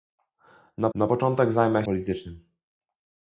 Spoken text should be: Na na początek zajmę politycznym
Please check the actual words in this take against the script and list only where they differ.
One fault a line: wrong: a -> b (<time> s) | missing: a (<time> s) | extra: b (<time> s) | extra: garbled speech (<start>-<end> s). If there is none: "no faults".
no faults